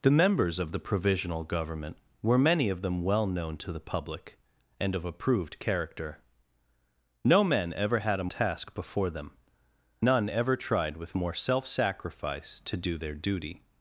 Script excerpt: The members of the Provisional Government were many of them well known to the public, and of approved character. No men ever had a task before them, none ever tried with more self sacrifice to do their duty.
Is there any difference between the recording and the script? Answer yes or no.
no